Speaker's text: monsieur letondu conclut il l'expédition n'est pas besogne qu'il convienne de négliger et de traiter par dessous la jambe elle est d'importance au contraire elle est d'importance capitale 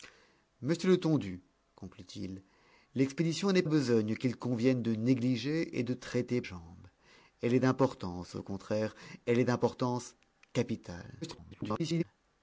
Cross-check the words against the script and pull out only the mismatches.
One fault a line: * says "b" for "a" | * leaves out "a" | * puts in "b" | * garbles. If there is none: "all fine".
* leaves out "pas"
* leaves out "par dessous la"
* garbles